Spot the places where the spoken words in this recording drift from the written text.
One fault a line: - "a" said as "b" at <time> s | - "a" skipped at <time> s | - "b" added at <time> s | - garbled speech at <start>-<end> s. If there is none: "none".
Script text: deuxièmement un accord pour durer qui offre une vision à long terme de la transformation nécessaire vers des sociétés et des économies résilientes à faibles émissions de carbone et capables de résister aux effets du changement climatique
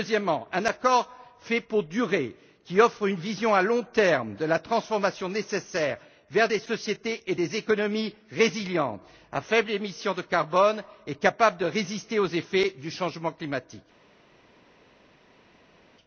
- "fait" added at 1.4 s